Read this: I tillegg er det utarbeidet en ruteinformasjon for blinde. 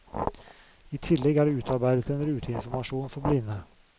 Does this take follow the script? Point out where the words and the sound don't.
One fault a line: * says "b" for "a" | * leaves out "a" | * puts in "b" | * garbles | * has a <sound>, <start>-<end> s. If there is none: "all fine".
all fine